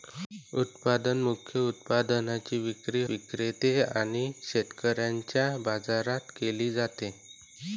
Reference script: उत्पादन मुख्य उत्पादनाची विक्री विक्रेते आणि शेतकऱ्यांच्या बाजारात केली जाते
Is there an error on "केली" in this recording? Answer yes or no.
no